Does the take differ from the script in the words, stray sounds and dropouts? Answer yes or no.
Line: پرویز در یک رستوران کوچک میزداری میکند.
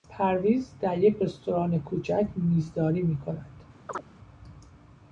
yes